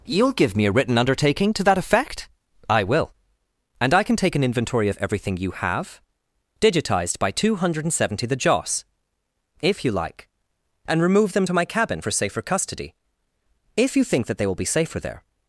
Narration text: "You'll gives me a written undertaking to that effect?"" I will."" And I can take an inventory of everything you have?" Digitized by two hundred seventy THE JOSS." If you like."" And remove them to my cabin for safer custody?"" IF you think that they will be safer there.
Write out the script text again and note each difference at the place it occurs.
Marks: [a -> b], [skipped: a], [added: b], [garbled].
"You'll [gives -> give] me a written undertaking to that effect?"" I will."" And I can take an inventory of everything you have?" Digitized by two hundred seventy THE JOSS." If you like."" And remove them to my cabin for safer custody?"" IF you think that they will be safer there.